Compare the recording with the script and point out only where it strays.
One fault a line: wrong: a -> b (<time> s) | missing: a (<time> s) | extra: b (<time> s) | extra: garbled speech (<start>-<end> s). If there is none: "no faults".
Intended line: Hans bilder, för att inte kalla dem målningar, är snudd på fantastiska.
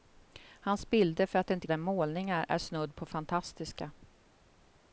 missing: kalla (1.7 s)